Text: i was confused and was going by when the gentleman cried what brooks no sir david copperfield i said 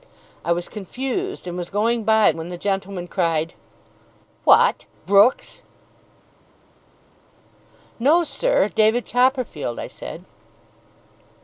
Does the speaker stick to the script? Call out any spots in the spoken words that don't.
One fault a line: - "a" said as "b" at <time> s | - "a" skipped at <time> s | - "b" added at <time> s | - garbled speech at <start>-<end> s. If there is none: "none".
none